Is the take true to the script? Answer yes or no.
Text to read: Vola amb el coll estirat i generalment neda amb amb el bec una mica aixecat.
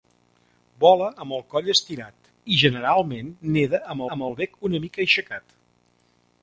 yes